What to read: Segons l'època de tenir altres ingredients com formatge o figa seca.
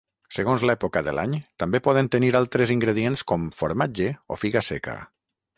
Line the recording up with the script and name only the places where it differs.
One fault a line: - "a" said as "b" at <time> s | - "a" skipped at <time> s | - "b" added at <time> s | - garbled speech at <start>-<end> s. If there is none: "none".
- "l'any també poden" added at 1.2 s